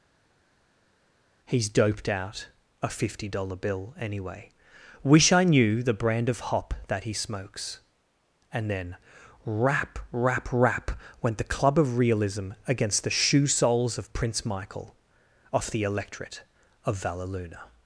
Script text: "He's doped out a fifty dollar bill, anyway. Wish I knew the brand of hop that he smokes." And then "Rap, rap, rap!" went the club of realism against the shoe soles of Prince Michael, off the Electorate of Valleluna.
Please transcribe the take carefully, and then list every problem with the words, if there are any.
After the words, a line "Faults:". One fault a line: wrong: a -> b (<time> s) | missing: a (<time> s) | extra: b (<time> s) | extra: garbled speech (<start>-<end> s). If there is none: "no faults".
"He's doped out a fifty dollar bill, anyway. Wish I knew the brand of hop that he smokes." And then "Rap, rap, rap!" went the club of realism against the shoe soles of Prince Michael, off the Electorate of Valleluna.
Faults:
no faults